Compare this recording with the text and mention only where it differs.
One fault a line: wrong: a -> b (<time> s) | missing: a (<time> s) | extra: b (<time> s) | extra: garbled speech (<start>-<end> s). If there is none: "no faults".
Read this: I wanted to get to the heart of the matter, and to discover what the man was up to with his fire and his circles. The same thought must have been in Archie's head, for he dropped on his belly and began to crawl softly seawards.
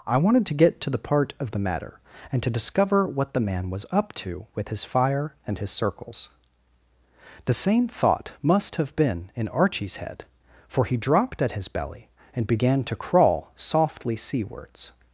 wrong: heart -> part (1.0 s)
wrong: on -> at (11.4 s)